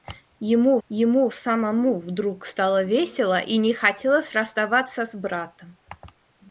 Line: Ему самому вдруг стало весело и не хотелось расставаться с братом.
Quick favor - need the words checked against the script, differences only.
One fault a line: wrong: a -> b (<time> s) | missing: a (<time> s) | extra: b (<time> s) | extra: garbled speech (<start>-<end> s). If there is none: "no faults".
extra: ему (0.9 s)